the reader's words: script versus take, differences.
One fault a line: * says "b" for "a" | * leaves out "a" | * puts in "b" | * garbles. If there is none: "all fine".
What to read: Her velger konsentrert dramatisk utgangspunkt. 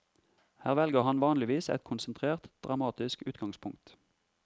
* puts in "han vanligvis et"